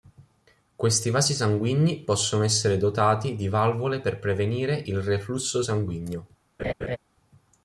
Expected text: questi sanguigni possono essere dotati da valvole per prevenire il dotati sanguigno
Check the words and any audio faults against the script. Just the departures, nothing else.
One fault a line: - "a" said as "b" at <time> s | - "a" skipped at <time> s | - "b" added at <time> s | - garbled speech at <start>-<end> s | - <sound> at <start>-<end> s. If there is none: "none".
- "vasi" added at 1.1 s
- "da" said as "di" at 3.4 s
- "dotati" said as "reflusso" at 5.0 s
- laugh at 6.6-7.0 s